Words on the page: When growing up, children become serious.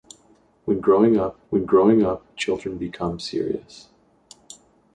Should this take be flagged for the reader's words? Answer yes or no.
yes